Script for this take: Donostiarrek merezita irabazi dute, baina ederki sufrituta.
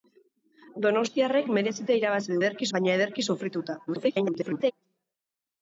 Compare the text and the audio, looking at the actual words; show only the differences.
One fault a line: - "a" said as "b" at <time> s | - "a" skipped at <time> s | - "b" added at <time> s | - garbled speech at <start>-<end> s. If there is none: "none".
- "dute" said as "ederki" at 2.4 s
- garbled speech at 3.9-4.7 s